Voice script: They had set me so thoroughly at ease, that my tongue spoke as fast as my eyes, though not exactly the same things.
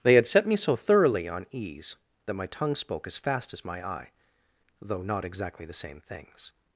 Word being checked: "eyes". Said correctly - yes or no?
no